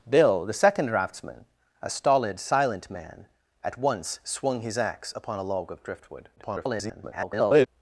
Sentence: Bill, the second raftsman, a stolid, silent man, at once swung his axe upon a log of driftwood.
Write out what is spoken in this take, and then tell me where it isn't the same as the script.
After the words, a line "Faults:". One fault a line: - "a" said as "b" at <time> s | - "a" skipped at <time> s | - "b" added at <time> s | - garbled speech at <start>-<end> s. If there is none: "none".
Bill, the second raftsman, a stolid, silent man, at once swung his axe upon a log of driftwood. [garbled]
Faults:
- garbled speech at 6.4-7.7 s